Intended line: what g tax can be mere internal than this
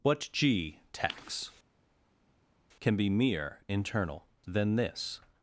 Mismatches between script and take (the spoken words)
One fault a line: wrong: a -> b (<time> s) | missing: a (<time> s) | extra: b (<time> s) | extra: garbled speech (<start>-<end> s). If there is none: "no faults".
no faults